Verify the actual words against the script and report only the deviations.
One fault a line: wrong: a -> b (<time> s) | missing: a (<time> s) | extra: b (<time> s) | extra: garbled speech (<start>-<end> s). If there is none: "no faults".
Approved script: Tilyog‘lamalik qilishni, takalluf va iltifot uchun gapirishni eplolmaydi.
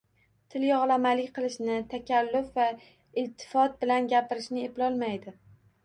wrong: uchun -> bilan (3.9 s)